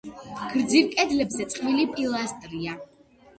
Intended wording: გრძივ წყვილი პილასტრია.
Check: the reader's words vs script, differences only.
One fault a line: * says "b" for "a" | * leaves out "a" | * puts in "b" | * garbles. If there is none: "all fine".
* puts in "კედლებზე"